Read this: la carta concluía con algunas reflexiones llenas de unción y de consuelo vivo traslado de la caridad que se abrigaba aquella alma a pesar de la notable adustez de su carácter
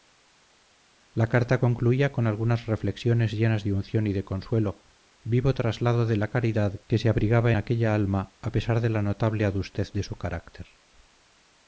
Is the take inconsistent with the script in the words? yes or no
no